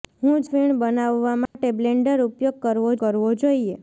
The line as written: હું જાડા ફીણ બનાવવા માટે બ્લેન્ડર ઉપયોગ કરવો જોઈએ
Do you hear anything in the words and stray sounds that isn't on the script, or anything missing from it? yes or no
yes